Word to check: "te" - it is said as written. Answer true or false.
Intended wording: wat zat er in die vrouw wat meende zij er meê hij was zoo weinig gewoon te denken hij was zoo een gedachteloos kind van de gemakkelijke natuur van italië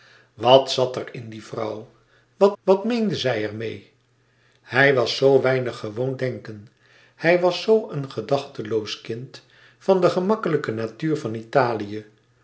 false